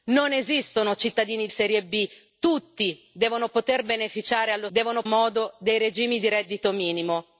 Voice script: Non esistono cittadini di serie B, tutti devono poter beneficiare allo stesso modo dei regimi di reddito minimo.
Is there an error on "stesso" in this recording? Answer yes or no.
yes